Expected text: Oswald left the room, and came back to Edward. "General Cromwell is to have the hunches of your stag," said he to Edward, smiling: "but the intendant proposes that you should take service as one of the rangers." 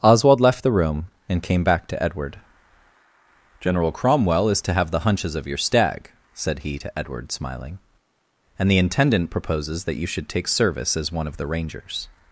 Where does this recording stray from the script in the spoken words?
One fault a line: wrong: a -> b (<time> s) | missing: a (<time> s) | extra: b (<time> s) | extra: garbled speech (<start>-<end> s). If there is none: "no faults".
wrong: but -> and (8.6 s)